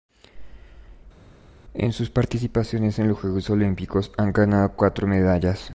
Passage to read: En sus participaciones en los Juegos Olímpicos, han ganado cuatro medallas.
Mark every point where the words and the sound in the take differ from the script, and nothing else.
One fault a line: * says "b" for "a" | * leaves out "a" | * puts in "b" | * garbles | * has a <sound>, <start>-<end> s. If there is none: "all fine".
all fine